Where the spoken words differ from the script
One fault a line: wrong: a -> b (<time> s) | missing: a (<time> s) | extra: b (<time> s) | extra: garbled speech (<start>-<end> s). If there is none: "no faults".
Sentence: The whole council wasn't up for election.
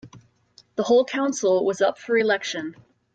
wrong: wasn't -> was (1.6 s)